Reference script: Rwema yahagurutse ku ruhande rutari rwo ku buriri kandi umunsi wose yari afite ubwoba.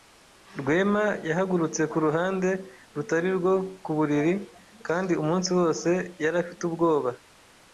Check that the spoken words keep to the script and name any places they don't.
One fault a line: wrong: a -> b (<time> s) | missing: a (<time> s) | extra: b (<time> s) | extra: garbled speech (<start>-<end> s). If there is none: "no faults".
no faults